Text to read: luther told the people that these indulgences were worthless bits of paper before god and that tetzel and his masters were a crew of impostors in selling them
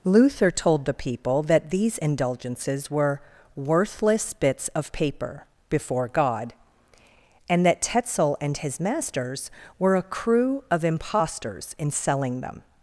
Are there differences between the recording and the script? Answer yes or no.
no